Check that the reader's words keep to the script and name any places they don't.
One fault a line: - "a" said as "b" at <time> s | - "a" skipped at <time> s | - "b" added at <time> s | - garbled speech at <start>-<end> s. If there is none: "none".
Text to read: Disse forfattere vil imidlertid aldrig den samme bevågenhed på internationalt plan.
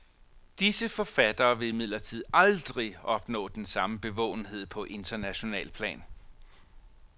- "opnå" added at 3.0 s